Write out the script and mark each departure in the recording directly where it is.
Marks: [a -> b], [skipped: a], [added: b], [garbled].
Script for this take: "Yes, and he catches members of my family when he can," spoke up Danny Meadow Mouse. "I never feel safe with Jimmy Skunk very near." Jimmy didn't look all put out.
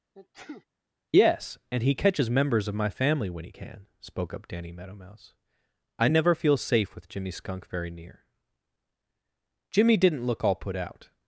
"Yes, and he catches members of my family when he can," spoke up Danny Meadow Mouse. "I never feel safe with Jimmy Skunk very near." Jimmy didn't look all put out.